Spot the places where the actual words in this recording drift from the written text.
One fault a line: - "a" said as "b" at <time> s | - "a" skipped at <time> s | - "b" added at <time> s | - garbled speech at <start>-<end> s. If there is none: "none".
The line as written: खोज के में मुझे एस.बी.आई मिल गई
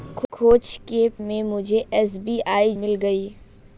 none